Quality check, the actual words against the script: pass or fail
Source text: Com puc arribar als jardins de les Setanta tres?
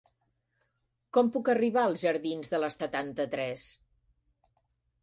pass